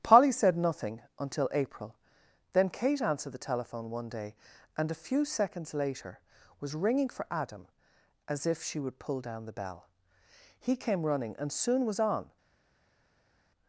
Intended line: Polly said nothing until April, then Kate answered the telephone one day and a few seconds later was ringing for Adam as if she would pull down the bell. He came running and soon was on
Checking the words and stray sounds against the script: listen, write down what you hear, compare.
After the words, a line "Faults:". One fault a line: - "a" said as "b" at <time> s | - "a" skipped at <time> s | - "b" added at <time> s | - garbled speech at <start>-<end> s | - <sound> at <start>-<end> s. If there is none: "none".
Polly said nothing until April, then Kate answered the telephone one day and a few seconds later was ringing for Adam as if she would pull down the bell. He came running and soon was on
Faults:
none